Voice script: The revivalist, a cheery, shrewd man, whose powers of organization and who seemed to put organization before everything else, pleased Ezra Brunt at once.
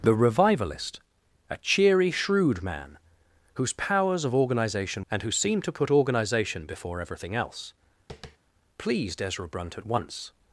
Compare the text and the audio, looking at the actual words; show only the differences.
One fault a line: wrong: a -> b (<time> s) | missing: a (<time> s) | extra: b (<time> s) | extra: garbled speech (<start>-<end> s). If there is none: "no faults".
no faults